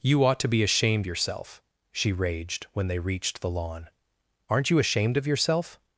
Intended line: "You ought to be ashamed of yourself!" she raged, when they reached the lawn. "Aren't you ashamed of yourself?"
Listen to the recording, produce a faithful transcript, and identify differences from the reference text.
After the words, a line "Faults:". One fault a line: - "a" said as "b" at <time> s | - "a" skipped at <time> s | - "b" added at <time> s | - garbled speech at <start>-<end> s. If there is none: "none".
"You ought to be ashamed yourself!" she raged, when they reached the lawn. "Aren't you ashamed of yourself?"
Faults:
- "of" skipped at 1.1 s